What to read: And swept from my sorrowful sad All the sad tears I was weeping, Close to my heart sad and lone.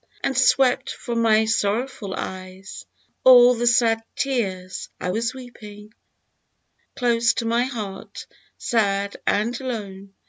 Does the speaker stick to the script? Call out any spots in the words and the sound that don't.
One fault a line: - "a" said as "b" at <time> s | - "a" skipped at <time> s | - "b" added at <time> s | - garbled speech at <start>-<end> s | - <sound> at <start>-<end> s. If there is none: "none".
- "sad" said as "eyes" at 2.1 s